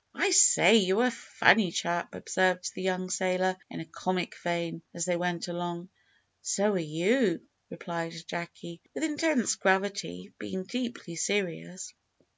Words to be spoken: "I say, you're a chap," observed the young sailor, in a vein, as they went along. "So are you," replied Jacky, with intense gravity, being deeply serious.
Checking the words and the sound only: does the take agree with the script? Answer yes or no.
no